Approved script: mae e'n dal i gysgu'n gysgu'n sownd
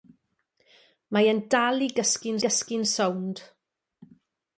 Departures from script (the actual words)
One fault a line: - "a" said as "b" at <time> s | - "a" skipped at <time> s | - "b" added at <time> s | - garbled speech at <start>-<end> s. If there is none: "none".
none